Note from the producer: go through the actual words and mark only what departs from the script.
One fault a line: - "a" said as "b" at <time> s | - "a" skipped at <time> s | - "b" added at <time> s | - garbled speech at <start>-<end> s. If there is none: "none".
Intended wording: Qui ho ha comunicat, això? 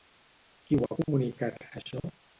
none